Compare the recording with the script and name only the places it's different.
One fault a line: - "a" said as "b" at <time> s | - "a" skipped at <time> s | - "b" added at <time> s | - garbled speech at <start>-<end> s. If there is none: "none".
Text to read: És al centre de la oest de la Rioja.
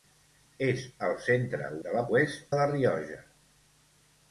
none